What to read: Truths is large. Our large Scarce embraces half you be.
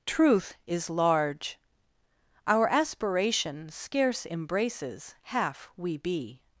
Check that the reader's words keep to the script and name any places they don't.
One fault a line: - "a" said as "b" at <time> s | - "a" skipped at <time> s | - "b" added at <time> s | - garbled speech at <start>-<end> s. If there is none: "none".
- "Truths" said as "Truth" at 0.1 s
- "large" said as "aspiration" at 2.7 s
- "you" said as "we" at 5.8 s